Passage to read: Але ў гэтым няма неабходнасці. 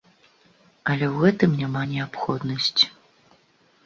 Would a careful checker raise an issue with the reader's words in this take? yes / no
no